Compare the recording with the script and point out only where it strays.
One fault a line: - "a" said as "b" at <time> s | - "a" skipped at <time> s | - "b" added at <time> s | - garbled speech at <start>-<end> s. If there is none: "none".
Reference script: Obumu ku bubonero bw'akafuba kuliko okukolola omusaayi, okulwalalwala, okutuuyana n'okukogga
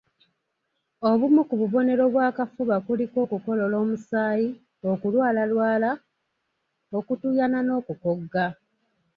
none